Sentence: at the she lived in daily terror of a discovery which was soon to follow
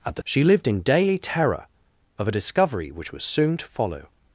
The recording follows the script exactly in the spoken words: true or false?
true